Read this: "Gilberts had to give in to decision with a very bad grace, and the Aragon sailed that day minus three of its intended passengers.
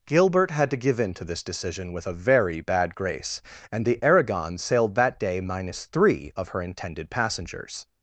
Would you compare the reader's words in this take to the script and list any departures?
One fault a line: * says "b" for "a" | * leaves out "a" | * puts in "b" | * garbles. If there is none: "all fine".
* says "Gilbert" for "Gilberts"
* puts in "this"
* says "her" for "its"